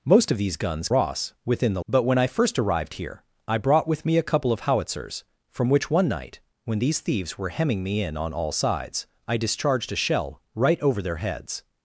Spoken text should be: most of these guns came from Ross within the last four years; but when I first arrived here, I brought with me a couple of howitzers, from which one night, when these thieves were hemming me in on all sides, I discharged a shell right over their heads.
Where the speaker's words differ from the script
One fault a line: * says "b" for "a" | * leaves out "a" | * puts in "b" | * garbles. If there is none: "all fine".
* leaves out "came from"
* leaves out "last four years"